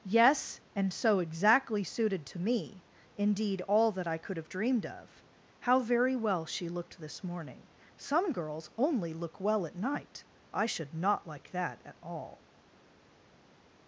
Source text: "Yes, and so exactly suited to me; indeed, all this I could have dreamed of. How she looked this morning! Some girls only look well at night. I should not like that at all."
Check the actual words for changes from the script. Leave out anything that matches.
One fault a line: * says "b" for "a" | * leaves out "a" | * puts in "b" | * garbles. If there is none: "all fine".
* says "that" for "this"
* puts in "very well"